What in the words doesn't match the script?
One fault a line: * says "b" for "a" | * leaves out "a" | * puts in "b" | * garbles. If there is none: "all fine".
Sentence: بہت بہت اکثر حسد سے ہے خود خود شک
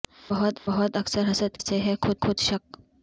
all fine